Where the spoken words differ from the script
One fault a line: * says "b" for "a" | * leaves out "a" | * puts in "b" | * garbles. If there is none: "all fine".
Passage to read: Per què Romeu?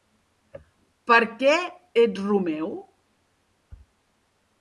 * puts in "ets"